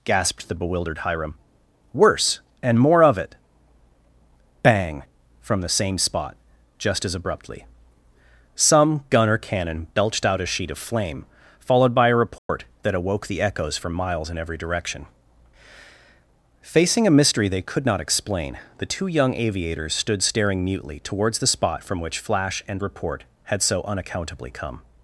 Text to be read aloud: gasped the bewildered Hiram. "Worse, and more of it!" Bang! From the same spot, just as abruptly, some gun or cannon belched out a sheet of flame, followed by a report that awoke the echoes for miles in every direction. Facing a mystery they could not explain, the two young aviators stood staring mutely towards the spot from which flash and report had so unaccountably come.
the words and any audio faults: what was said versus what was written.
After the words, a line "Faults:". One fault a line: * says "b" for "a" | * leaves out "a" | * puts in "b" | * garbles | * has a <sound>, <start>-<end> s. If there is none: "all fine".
gasped the bewildered Hiram. "Worse, and more of it!" Bang! From the same spot, just as abruptly, some gun or cannon belched out a sheet of flame, followed by a report that awoke the echoes for miles in every direction. Facing a mystery they could not explain, the two young aviators stood staring mutely towards the spot from which flash and report had so unaccountably come.
Faults:
* has a dropout, 12.4-12.5 s